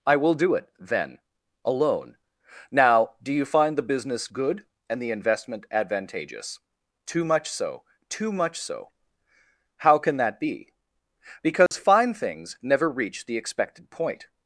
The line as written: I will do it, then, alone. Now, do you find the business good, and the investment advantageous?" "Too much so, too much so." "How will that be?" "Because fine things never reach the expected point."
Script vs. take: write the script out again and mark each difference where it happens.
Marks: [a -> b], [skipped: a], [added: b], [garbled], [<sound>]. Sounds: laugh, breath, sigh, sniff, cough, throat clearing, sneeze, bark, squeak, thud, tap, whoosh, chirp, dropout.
I will do it, then, alone. Now, do you find the business good, and the investment advantageous?" "Too much so, too much so." "How [will -> can] that be?" "Because [dropout] fine things never reach the expected point."